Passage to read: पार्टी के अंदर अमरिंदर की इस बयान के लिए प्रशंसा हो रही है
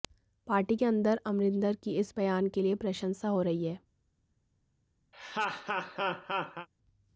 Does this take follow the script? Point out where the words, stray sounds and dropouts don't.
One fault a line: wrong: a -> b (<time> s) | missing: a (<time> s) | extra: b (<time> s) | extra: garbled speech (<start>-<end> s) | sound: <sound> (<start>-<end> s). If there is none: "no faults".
sound: laugh (5.1-6.7 s)